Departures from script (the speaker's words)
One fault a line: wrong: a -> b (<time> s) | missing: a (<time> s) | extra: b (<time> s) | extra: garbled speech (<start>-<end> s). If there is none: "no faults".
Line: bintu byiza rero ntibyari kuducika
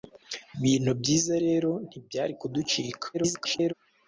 extra: garbled speech (3.1-3.7 s)